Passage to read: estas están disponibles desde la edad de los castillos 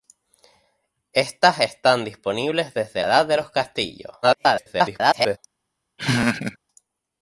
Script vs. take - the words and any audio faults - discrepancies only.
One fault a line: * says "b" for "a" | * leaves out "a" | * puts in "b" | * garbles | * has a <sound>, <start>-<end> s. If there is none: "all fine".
* leaves out "la"
* garbles
* has a laugh, 6.0-6.6 s